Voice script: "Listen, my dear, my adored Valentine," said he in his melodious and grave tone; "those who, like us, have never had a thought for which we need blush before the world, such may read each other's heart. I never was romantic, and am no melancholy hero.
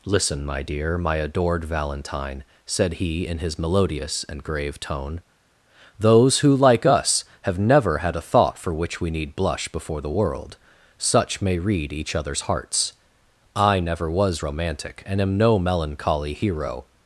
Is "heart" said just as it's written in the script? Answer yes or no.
no